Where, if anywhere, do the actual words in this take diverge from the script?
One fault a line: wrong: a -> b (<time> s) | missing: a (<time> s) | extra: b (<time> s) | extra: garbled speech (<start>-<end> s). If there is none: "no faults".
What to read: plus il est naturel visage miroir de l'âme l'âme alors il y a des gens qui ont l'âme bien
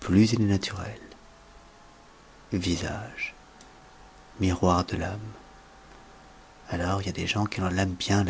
missing: l'âme (5.2 s)